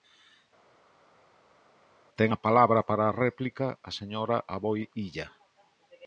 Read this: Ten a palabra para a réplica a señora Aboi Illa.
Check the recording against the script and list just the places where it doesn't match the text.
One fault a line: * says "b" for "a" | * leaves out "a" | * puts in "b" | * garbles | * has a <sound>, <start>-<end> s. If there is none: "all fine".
all fine